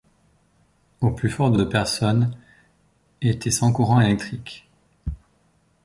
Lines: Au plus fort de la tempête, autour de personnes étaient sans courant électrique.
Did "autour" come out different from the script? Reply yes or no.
yes